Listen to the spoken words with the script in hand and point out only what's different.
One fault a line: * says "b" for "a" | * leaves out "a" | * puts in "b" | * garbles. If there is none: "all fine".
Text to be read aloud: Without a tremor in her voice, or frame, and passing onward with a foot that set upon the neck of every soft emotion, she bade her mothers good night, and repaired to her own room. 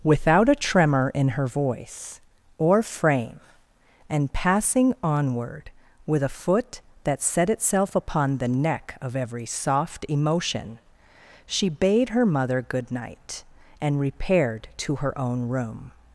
* puts in "itself"
* says "mother" for "mothers"